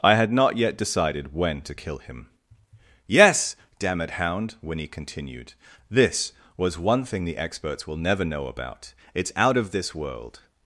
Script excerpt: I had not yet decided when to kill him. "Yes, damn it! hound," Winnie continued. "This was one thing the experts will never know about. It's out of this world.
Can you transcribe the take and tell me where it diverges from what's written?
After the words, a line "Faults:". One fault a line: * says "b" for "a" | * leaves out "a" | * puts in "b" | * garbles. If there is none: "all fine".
I had not yet decided when to kill him. "Yes, damn it! hound," Winnie continued. "This was one thing the experts will never know about. It's out of this world.
Faults:
all fine